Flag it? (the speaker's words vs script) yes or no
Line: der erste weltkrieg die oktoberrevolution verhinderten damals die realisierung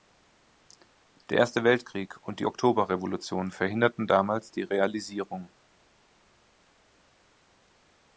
yes